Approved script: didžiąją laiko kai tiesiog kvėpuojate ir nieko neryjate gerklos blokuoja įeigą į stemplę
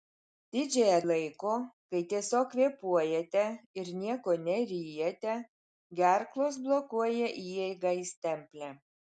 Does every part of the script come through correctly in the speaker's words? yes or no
yes